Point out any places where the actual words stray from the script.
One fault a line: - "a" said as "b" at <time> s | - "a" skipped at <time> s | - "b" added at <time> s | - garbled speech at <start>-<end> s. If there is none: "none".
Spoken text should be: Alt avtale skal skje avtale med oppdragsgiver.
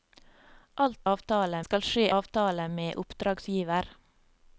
none